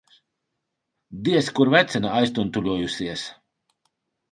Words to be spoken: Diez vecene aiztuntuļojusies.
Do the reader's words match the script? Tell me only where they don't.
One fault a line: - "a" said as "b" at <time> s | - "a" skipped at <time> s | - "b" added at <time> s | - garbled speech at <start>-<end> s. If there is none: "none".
- "kur" added at 1.6 s